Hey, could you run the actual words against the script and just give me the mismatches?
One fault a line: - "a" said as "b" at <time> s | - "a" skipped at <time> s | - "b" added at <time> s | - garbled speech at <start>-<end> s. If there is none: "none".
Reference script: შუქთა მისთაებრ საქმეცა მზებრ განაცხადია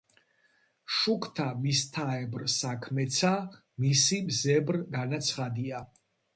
- "მისი" added at 3.9 s